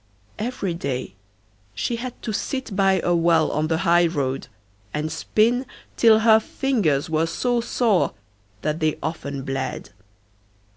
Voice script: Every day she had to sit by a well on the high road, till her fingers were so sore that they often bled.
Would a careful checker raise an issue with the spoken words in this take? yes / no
yes